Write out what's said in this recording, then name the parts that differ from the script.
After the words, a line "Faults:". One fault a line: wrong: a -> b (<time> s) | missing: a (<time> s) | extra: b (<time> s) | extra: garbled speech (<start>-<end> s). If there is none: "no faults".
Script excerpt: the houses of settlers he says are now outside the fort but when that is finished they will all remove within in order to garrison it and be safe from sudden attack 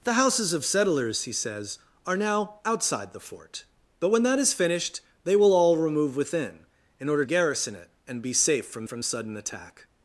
the houses of settlers he says are now outside the fort but when that is finished they will all remove within in order garrison it and be safe from from sudden attack
Faults:
missing: to (7.2 s)
extra: from (8.8 s)